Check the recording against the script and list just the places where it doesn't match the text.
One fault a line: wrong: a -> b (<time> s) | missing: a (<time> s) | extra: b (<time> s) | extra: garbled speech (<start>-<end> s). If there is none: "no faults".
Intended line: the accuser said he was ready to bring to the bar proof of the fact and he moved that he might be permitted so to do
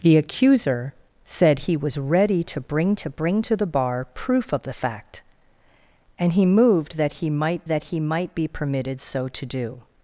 extra: bring to (3.1 s)
extra: that he might (7.7 s)